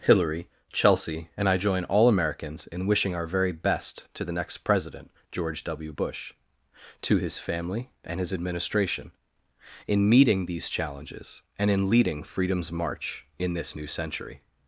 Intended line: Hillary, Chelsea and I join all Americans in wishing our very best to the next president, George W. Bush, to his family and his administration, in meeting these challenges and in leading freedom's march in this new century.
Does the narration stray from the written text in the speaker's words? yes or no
no